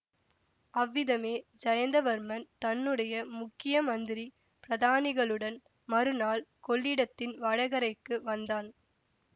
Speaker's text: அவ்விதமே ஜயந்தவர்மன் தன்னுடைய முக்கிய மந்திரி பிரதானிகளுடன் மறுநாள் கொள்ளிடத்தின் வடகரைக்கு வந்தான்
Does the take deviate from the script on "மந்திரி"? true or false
false